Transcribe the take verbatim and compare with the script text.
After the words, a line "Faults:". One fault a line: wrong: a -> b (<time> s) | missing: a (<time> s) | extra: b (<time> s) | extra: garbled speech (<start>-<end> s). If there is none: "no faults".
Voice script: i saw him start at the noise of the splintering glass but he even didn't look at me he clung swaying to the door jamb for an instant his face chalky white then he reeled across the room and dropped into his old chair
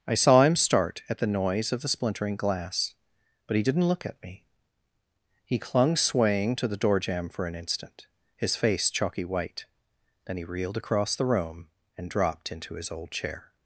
i saw him start at the noise of the splintering glass but he didn't look at me he clung swaying to the door jamb for an instant his face chalky white then he reeled across the room and dropped into his old chair
Faults:
missing: even (3.6 s)